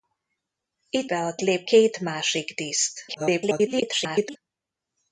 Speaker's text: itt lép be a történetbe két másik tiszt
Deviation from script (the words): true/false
true